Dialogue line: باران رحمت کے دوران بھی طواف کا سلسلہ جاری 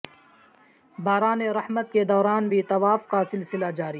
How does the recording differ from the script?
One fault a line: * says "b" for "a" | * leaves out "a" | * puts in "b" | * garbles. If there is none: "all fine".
all fine